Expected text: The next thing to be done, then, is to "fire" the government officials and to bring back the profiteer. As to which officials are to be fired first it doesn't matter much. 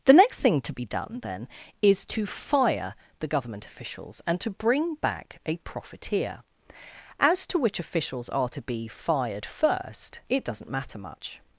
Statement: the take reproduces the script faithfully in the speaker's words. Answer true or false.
false